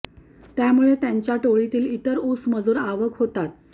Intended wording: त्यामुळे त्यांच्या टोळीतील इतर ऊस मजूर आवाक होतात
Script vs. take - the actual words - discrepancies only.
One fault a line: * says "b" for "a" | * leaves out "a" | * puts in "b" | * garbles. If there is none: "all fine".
all fine